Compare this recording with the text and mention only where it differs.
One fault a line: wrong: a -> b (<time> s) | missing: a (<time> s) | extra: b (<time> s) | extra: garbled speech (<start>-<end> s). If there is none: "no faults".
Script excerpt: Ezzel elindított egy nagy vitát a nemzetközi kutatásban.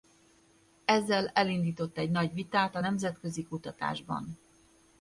no faults